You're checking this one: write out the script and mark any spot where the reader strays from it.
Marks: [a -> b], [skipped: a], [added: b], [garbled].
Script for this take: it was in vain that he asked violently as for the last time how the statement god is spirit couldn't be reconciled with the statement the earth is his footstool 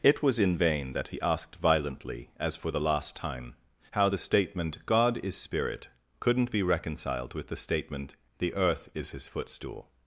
it was in vain that he asked violently as for the last time how the statement god is spirit couldn't be reconciled with the statement the earth is his footstool